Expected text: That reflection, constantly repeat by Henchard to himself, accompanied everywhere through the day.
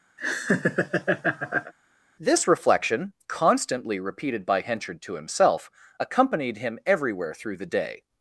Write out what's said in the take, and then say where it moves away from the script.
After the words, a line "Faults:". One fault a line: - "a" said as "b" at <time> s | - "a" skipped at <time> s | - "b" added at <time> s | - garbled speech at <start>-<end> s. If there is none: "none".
This reflection, constantly repeated by Henchard to himself, accompanied him everywhere through the day.
Faults:
- "That" said as "This" at 2.2 s
- "repeat" said as "repeated" at 4.0 s
- "him" added at 6.6 s